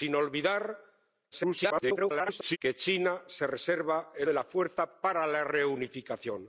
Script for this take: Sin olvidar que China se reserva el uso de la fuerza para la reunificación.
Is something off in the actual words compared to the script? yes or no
yes